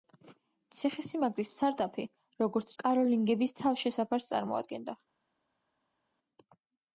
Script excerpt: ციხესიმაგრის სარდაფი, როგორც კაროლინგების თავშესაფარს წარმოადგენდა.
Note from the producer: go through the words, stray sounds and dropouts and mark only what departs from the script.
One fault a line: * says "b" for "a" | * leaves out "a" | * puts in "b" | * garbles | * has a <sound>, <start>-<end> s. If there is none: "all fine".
all fine